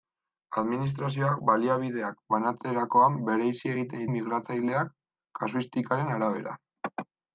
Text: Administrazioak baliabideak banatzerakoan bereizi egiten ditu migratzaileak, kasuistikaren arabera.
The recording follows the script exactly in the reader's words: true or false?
false